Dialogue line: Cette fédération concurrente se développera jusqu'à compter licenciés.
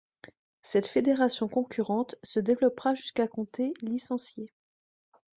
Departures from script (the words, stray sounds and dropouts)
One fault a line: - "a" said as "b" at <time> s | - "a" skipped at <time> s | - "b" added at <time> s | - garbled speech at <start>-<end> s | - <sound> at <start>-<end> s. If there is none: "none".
none